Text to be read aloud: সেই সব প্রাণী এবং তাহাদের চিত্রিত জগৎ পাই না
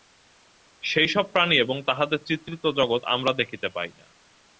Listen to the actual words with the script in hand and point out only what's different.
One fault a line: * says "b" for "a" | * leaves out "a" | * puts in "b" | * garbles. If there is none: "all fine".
* puts in "আমরা দেখিতে"